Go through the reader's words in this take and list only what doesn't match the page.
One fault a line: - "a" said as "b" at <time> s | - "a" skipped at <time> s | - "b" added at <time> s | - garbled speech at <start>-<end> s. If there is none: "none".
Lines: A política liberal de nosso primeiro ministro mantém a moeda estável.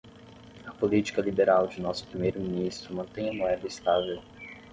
none